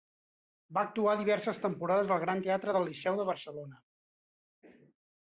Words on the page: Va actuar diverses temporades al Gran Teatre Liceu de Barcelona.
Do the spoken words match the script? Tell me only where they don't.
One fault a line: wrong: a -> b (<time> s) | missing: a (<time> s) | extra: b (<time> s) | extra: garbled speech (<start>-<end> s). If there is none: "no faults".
extra: del (2.7 s)